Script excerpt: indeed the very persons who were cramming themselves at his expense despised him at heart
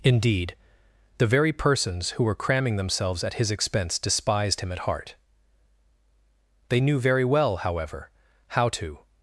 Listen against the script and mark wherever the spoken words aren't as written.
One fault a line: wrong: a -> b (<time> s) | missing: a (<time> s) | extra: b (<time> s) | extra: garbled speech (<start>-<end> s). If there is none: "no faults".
extra: they knew very well however how to (6.7 s)